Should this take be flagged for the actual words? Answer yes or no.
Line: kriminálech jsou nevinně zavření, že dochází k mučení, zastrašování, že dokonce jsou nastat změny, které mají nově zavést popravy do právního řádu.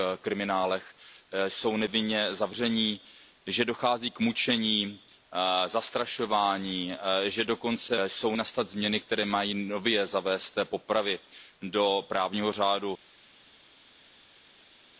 no